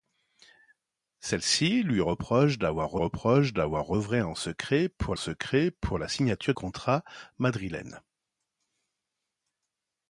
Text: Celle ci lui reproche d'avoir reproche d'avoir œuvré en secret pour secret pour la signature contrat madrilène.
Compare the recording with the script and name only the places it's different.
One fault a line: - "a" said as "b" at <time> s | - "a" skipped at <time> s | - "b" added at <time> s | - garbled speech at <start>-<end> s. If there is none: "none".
none